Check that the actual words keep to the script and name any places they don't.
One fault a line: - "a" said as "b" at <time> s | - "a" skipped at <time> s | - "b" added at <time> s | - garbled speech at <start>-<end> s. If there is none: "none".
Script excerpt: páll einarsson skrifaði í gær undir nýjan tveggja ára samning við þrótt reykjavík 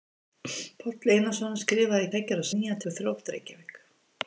- "gær undir nýjan" skipped at 2.1 s
- "samning" said as "nýjan" at 2.5 s